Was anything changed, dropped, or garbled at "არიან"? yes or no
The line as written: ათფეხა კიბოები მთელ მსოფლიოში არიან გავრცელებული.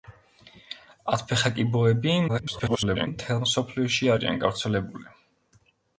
no